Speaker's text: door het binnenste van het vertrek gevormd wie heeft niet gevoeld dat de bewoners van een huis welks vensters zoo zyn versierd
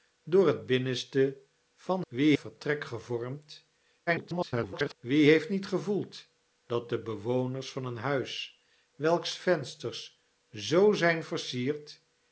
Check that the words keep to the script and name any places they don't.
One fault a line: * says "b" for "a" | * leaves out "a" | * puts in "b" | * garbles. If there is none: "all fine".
* says "wie" for "het"
* garbles